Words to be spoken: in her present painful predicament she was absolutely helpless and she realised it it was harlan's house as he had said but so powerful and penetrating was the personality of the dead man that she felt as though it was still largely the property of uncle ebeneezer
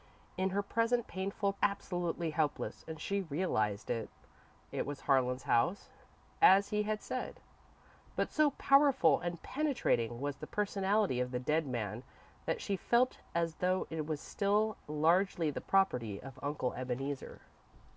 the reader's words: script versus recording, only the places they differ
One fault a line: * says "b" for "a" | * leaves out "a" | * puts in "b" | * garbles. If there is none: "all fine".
* leaves out "predicament she was"